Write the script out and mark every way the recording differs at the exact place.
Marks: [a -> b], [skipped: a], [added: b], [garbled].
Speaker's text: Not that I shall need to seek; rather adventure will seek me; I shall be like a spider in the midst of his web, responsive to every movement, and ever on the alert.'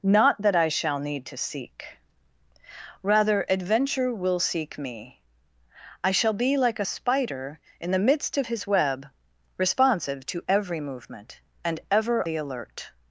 Not that I shall need to seek; rather adventure will seek me; I shall be like a spider in the midst of his web, responsive to every movement, and ever [skipped: on] the alert.'